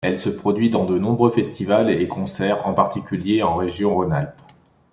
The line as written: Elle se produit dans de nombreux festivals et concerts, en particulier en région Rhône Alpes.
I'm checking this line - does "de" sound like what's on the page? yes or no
yes